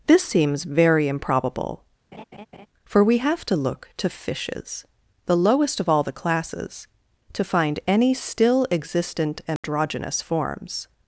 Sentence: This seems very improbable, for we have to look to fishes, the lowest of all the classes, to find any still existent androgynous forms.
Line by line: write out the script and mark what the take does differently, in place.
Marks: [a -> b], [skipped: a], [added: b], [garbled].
This seems very improbable, for we have to look to fishes, the lowest of all the classes, to find any still existent androgynous forms.